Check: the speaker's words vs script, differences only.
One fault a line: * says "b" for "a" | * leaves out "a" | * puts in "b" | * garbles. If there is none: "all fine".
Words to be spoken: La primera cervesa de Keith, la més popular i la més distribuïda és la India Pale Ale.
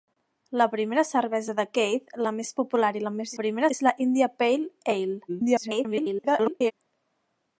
* says "primera" for "distribuïda"
* garbles